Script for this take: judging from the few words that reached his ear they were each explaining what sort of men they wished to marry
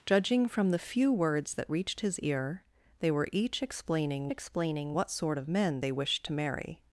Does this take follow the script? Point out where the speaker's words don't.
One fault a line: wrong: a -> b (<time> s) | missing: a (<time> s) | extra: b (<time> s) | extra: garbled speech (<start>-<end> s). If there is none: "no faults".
extra: explaining (4.3 s)